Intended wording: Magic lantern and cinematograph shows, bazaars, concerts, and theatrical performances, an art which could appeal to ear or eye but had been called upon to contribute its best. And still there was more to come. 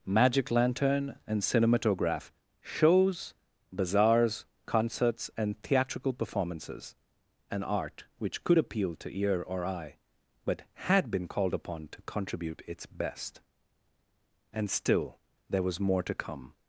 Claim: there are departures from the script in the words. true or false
false